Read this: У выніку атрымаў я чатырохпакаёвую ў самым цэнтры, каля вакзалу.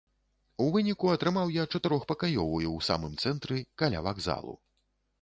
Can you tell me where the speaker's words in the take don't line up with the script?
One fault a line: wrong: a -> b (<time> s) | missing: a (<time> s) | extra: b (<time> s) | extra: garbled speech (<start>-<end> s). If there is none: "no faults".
no faults